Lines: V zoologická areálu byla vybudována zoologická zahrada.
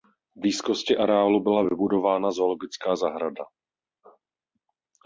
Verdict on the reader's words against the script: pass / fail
fail